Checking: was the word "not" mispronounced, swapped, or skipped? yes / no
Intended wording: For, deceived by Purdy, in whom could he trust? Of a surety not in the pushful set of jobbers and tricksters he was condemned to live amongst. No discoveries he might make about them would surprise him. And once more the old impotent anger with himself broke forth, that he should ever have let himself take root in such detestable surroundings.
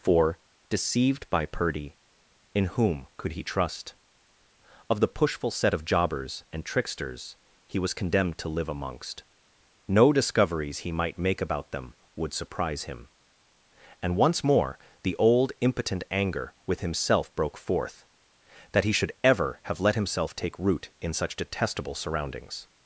yes